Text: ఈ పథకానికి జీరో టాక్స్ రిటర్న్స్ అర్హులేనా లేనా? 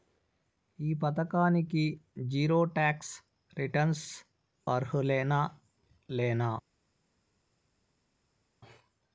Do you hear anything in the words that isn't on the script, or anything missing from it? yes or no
no